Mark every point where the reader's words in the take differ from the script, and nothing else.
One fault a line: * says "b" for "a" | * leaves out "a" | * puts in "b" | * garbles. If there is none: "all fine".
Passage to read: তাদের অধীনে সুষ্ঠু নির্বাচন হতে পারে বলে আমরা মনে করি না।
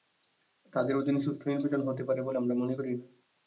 all fine